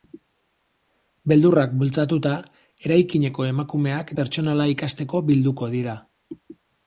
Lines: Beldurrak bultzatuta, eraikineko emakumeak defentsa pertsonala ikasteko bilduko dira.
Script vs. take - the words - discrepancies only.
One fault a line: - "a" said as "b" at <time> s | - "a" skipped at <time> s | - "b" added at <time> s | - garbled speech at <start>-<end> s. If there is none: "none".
- "defentsa" skipped at 4.1 s